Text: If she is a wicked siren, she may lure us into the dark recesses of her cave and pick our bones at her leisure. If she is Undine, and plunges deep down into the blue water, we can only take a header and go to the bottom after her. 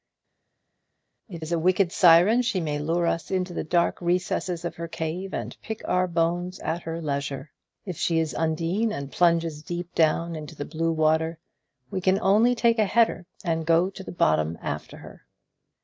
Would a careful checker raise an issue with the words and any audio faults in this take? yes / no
yes